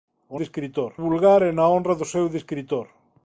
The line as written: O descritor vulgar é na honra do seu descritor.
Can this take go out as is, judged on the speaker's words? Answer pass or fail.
pass